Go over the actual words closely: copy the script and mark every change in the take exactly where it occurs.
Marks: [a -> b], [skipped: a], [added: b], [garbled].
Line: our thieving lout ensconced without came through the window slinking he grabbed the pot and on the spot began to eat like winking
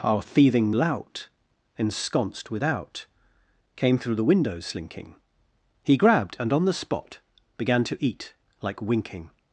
our thieving lout ensconced without came through the window slinking he grabbed [skipped: the pot] and on the spot began to eat like winking